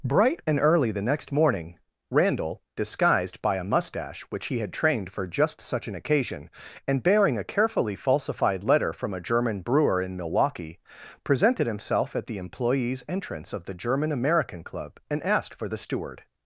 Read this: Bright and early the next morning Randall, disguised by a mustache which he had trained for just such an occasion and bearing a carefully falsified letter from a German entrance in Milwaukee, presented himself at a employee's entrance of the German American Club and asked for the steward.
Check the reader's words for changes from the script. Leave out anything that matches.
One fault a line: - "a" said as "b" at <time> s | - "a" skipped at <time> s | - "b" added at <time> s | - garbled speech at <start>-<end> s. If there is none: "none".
- "entrance" said as "brewer" at 9.6 s
- "a" said as "the" at 12.2 s